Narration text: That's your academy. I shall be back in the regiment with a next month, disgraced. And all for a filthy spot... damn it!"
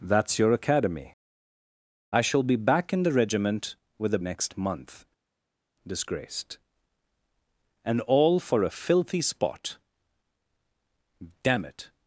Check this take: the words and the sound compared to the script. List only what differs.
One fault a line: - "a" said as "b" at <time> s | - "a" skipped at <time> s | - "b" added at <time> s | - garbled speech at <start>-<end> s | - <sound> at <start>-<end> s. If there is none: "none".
none